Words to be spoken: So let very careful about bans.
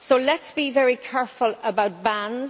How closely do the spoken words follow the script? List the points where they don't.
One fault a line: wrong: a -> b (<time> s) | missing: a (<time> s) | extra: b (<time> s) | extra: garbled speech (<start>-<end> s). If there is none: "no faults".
extra: us be (0.4 s)